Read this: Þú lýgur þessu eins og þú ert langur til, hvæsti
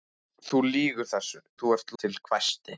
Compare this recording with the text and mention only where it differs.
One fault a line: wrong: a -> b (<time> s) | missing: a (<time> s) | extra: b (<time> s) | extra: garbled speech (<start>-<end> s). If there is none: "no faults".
missing: eins (1.4 s)
missing: langur (1.9 s)